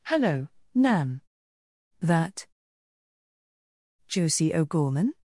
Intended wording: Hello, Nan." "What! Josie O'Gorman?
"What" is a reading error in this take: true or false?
true